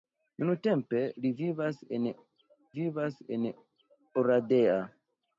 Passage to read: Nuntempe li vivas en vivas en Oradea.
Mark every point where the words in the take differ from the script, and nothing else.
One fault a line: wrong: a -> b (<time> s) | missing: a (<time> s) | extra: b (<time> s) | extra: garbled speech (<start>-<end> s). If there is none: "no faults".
no faults